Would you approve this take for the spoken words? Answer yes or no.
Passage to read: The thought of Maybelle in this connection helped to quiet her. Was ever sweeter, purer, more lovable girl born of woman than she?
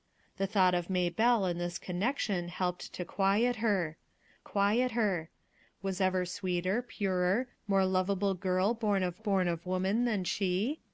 no